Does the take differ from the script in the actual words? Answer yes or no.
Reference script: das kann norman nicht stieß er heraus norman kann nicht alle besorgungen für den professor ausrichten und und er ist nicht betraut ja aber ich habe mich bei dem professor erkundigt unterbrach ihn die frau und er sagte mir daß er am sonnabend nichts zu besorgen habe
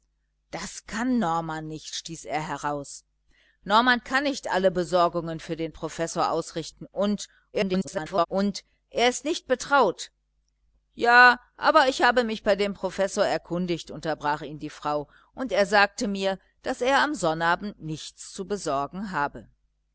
yes